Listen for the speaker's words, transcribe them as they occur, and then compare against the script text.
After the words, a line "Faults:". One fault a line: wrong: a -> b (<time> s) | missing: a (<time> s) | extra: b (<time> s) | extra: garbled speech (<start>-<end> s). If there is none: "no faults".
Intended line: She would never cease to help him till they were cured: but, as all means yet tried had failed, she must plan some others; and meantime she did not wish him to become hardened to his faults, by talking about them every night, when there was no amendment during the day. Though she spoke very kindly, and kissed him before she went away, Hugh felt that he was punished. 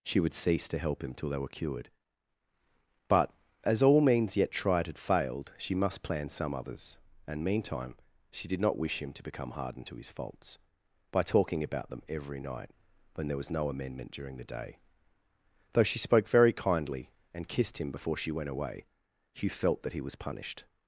She would cease to help him till they were cured: but, as all means yet tried had failed, she must plan some others; and meantime she did not wish him to become hardened to his faults, by talking about them every night, when there was no amendment during the day. Though she spoke very kindly, and kissed him before she went away, Hugh felt that he was punished.
Faults:
missing: never (0.3 s)